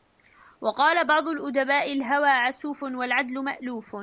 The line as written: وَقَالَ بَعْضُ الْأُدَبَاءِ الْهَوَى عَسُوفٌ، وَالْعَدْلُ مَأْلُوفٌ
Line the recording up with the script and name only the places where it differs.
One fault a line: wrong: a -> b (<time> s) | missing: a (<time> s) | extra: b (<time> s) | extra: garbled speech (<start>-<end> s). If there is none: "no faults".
no faults